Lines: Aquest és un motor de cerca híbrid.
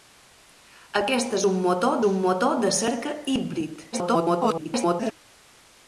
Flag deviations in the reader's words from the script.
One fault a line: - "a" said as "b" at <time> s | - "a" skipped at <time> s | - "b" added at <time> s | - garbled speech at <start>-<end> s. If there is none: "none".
- "un motor" added at 2.1 s
- garbled speech at 3.9-5.1 s